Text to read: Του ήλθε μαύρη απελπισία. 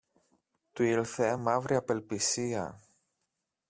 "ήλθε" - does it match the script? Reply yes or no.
yes